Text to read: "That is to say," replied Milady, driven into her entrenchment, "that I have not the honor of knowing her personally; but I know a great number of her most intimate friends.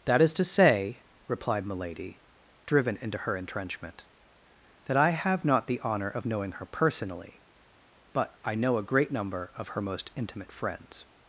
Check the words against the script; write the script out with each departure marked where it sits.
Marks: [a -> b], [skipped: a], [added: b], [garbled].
"That is to say," replied Milady, driven into her entrenchment, "that I have not the honor of knowing her personally; but I know a great number of her most intimate friends.